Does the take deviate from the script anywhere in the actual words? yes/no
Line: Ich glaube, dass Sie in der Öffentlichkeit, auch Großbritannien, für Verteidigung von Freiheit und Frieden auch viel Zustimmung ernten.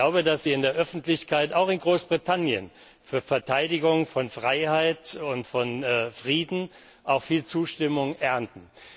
yes